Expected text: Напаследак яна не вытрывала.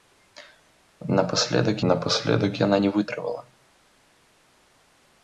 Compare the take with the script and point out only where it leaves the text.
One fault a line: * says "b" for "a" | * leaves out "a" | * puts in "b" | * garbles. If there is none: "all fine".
* puts in "напаследак"